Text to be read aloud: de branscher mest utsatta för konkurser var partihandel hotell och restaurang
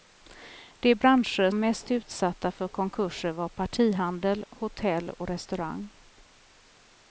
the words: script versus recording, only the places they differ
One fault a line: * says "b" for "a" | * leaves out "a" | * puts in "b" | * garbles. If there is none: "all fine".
all fine